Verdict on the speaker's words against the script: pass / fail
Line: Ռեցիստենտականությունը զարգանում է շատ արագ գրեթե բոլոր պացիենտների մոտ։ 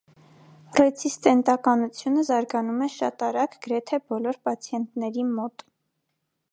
pass